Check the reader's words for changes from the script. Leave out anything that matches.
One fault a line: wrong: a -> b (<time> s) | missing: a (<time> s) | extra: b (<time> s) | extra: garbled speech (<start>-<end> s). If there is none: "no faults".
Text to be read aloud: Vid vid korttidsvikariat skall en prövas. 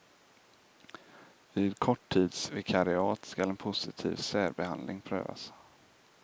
missing: vid (1.8 s)
extra: positiv särbehandling (3.6 s)